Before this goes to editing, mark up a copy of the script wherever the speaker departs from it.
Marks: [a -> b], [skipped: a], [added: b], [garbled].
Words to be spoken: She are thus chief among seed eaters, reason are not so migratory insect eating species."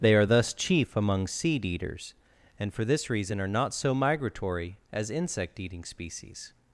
[She -> They] are thus chief among seed eaters, [added: and for this] reason are not so migratory [added: as] insect eating species."